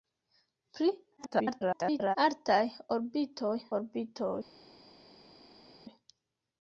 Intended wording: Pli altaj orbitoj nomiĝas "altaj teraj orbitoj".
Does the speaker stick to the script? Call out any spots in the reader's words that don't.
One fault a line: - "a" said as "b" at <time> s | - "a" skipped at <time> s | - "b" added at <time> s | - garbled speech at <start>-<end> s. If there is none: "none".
- garbled speech at 1.2-2.2 s
- "nomiĝas altaj teraj" skipped at 3.5 s